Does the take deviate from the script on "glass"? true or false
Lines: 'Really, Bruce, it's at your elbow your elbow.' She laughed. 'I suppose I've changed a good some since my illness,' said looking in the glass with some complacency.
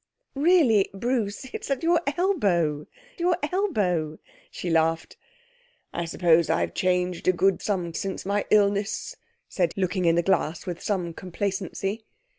false